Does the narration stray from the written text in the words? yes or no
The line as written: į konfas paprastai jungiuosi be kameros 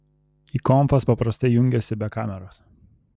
no